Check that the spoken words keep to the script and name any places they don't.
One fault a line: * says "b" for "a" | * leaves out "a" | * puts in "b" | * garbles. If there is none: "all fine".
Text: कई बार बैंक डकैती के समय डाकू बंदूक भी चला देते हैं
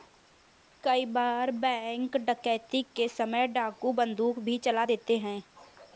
all fine